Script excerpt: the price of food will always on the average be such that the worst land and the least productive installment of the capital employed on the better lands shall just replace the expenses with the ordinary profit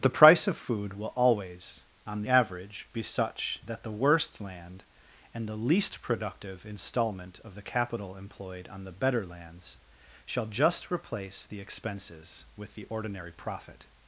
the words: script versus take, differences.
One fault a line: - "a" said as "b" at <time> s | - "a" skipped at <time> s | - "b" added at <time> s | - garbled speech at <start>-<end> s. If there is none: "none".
- "the" skipped at 2.2 s